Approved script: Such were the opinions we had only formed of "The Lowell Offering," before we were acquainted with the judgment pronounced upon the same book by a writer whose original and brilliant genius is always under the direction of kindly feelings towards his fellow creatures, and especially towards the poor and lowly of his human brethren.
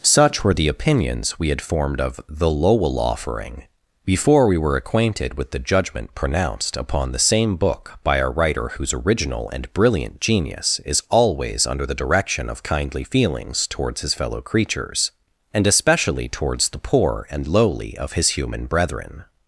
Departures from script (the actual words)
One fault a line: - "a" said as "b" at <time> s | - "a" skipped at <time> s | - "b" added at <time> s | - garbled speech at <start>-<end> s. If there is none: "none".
- "only" skipped at 1.6 s